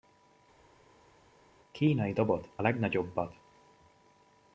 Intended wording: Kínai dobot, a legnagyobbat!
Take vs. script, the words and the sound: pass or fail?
fail